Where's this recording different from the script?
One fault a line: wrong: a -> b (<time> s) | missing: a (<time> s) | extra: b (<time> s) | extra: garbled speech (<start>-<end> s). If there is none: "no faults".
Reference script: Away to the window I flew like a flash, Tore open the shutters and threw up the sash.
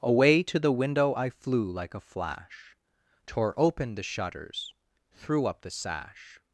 missing: and (4.7 s)